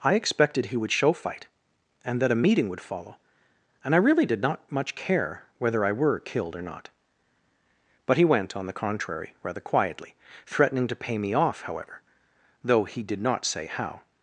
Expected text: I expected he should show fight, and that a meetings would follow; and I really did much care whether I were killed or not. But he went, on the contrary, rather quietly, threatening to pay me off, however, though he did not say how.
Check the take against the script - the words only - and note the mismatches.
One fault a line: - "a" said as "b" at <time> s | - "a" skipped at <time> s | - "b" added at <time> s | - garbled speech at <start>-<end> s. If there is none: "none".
- "should" said as "would" at 0.8 s
- "meetings" said as "meeting" at 2.4 s
- "not" added at 4.4 s